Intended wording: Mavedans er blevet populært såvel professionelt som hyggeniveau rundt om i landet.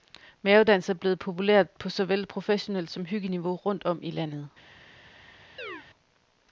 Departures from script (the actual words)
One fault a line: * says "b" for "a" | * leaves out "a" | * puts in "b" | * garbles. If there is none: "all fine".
* puts in "på"